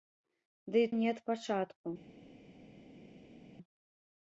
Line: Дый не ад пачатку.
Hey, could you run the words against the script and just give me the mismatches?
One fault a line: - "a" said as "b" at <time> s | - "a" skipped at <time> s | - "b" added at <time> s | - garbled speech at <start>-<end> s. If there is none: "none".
none